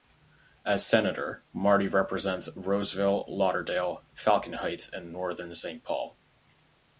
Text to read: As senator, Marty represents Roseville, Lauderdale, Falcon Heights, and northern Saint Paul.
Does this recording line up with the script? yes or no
yes